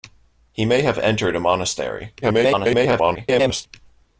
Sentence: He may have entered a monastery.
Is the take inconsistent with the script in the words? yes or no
yes